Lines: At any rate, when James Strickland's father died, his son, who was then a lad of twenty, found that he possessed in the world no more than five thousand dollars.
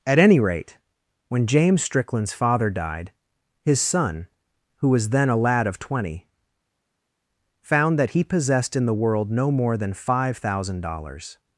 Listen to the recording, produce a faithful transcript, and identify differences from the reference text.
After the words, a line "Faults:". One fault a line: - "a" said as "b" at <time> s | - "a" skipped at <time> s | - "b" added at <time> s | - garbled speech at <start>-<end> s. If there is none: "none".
At any rate, when James Strickland's father died, his son, who was then a lad of twenty, found that he possessed in the world no more than five thousand dollars.
Faults:
none